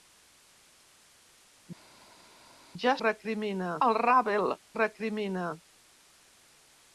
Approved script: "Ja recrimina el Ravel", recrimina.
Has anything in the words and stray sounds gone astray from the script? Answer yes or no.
no